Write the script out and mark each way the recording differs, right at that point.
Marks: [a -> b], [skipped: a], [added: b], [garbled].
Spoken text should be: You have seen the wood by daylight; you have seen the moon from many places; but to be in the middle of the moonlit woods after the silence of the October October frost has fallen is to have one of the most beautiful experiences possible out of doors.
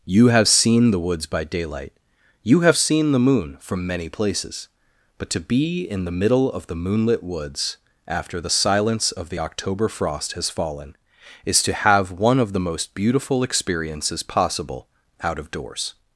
You have seen the [wood -> woods] by daylight; you have seen the moon from many places; but to be in the middle of the moonlit woods after the silence of the October [skipped: October] frost has fallen is to have one of the most beautiful experiences possible out of doors.